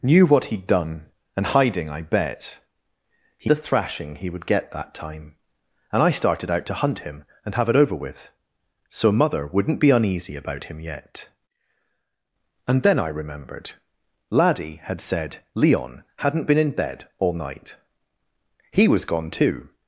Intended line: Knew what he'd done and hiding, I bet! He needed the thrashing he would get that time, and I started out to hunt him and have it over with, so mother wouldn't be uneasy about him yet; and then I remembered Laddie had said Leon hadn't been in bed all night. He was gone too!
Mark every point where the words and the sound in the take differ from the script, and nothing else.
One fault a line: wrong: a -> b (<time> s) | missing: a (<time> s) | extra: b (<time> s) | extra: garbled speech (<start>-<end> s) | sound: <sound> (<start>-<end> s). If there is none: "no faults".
missing: needed (3.5 s)